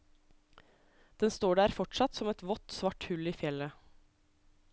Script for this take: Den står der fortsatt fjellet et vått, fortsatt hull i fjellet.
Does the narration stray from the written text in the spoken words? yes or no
yes